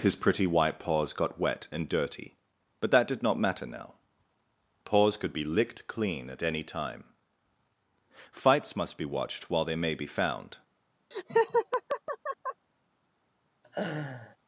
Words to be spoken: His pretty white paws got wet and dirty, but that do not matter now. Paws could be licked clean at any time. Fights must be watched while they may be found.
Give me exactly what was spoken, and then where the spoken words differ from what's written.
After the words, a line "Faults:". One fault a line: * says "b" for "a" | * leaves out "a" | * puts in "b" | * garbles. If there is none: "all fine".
His pretty white paws got wet and dirty, but that did not matter now. Paws could be licked clean at any time. Fights must be watched while they may be found.
Faults:
* says "did" for "do"